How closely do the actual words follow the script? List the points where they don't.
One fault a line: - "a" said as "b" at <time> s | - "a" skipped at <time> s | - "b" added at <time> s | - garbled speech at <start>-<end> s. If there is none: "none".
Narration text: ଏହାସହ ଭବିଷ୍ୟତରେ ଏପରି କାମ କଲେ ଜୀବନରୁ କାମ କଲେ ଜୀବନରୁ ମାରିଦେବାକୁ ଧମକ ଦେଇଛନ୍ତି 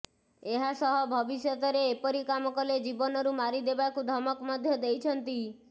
- "କାମ କଲେ ଜୀବନରୁ" skipped at 3.4 s
- "ମଧ୍ୟ" added at 4.5 s